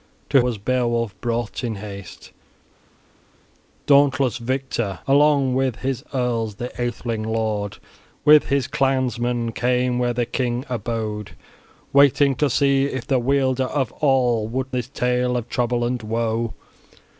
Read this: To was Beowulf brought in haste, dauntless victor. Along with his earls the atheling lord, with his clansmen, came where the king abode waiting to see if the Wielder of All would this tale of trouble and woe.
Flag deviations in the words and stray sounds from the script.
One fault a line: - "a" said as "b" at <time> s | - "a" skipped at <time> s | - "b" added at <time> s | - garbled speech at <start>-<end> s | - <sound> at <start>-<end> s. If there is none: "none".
none